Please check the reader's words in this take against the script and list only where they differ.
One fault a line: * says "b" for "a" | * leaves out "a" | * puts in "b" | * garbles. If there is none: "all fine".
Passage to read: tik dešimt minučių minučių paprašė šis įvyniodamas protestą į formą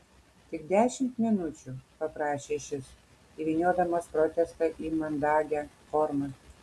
* leaves out "minučių"
* puts in "mandagią"